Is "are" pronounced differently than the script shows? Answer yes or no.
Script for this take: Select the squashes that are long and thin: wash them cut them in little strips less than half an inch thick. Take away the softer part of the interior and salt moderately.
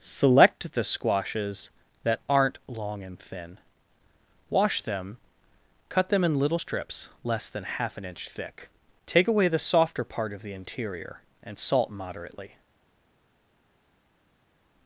yes